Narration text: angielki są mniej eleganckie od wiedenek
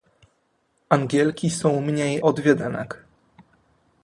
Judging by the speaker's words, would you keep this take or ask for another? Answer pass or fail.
fail